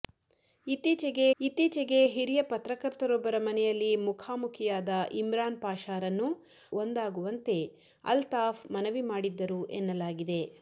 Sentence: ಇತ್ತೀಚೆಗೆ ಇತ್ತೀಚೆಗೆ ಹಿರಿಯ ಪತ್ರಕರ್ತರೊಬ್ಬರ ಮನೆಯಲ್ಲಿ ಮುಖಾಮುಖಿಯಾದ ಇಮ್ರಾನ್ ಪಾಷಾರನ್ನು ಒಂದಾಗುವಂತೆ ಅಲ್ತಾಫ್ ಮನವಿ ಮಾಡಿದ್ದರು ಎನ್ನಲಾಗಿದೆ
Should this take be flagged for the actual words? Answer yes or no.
no